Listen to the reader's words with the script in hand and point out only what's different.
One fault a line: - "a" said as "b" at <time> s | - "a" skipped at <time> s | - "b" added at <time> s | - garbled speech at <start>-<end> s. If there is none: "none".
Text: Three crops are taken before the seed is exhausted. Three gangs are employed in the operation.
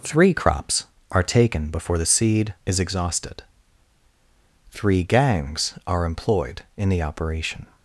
none